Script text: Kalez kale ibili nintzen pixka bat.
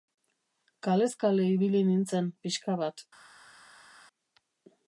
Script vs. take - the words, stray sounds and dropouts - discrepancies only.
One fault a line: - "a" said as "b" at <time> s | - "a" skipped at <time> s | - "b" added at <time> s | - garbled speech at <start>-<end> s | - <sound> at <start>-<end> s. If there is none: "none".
none